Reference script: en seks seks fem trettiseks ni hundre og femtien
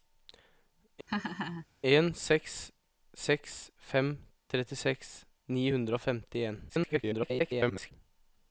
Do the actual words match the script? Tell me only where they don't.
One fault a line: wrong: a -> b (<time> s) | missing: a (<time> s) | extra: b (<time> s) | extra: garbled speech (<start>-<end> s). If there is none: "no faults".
extra: garbled speech (6.7-7.9 s)